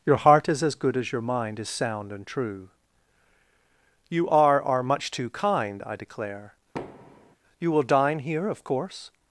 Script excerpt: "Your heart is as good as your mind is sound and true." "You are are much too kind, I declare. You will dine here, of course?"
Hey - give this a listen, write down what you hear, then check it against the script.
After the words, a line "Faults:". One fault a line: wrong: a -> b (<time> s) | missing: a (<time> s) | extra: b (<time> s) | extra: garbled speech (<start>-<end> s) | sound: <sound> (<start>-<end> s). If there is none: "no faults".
"Your heart is as good as your mind is sound and true." "You are are much too kind, I declare. You will dine here, of course?"
Faults:
sound: thud (6.7-7.4 s)